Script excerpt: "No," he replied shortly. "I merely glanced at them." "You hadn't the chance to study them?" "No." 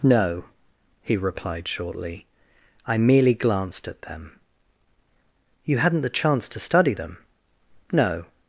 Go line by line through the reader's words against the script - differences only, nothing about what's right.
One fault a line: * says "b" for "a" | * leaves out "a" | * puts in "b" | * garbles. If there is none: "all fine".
all fine